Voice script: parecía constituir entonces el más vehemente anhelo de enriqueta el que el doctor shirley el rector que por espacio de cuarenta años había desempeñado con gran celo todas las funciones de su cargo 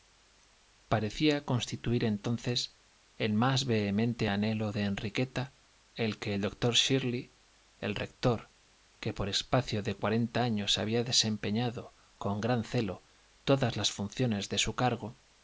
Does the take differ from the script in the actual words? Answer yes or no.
no